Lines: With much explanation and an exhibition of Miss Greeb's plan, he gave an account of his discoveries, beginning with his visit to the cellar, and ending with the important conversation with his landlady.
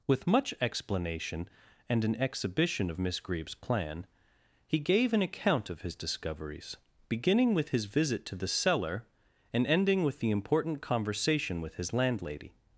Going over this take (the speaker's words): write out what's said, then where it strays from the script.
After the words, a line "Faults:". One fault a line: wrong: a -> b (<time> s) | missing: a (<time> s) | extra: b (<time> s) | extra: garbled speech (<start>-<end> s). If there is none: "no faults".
With much explanation and an exhibition of Miss Greeb's plan, he gave an account of his discoveries, beginning with his visit to the cellar, and ending with the important conversation with his landlady.
Faults:
no faults